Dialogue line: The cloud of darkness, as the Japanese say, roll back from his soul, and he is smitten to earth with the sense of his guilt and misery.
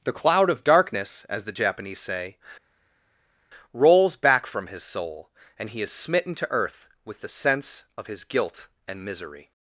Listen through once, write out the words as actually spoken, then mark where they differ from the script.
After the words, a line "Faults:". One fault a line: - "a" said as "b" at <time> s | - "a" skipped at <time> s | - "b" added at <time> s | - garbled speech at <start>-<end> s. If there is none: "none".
The cloud of darkness, as the Japanese say, rolls back from his soul, and he is smitten to earth with the sense of his guilt and misery.
Faults:
- "roll" said as "rolls" at 3.7 s